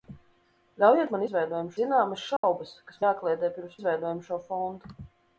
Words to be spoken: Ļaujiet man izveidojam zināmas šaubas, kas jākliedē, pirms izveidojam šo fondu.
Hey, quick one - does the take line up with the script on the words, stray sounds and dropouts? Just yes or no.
no